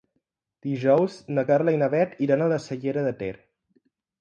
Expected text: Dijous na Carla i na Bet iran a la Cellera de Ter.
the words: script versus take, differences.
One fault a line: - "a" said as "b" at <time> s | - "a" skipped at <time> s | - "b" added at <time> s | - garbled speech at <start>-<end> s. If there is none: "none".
none